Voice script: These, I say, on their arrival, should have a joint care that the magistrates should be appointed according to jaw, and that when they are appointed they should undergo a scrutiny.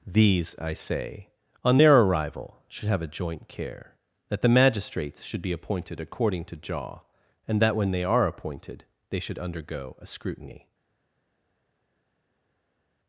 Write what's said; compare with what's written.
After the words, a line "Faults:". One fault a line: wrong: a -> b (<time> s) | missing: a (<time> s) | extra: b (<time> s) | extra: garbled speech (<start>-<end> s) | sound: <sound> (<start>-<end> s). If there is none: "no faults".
These, I say, on their arrival, should have a joint care that the magistrates should be appointed according to jaw, and that when they are appointed they should undergo a scrutiny.
Faults:
no faults